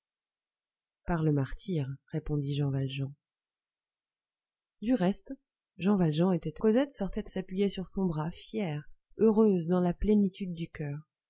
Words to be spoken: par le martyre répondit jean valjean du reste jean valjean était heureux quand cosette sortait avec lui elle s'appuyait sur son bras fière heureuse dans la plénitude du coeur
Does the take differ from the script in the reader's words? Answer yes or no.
yes